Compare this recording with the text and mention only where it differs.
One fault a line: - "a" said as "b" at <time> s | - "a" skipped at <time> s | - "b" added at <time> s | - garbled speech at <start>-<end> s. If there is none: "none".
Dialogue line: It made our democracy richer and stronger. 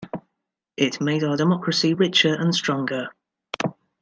none